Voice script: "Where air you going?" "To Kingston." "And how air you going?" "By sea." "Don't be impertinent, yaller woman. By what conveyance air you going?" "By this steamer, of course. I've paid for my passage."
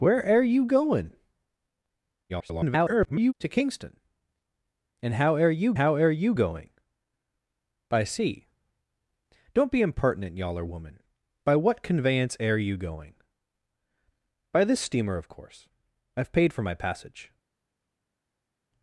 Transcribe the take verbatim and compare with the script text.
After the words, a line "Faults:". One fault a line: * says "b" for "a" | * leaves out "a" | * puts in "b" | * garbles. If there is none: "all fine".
"Where air you going?" [garbled] "To Kingston." "And how air you how air you going?" "By sea." "Don't be impertinent, yaller woman. By what conveyance air you going?" "By this steamer, of course. I've paid for my passage."
Faults:
* garbles
* puts in "how air you"